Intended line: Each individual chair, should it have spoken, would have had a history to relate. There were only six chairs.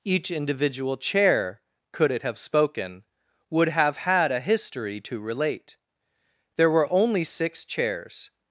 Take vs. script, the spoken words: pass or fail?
fail